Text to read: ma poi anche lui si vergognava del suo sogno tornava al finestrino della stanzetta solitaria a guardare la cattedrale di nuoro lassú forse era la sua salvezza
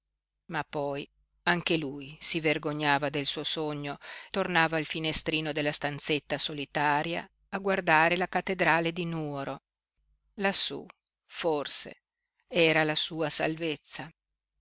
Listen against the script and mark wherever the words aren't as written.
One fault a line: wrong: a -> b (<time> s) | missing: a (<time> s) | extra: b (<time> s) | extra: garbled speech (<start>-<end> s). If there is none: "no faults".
no faults